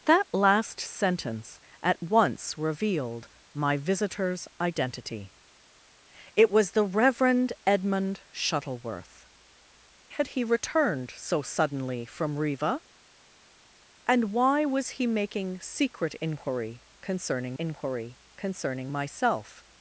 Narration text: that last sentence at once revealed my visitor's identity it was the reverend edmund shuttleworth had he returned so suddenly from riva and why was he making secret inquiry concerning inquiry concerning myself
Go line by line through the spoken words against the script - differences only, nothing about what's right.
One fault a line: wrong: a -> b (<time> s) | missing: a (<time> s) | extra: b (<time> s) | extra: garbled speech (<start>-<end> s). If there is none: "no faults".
no faults